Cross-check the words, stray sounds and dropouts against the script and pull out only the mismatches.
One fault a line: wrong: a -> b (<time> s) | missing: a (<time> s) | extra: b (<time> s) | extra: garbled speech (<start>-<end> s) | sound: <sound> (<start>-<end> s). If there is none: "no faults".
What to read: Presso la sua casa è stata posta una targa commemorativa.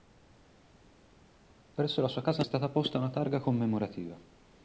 no faults